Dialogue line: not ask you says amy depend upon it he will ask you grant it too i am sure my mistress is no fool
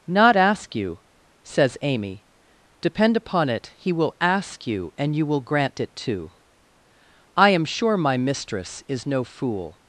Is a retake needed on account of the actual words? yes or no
yes